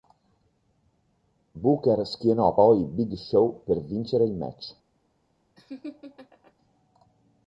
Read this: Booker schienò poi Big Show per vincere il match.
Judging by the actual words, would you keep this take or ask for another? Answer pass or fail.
pass